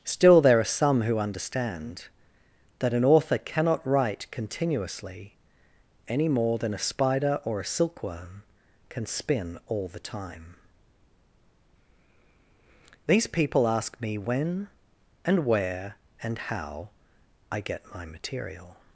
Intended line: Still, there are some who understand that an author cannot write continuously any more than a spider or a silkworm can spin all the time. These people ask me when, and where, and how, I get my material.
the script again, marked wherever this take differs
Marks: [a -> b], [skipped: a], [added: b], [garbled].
Still, there are some who understand that an author cannot write continuously any more than a spider or a silkworm can spin all the time. These people ask me when, and where, and how, I get my material.